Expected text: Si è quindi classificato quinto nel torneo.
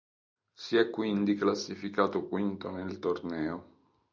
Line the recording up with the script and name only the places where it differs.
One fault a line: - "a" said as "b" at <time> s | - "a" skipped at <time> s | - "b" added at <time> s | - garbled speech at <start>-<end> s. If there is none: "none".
none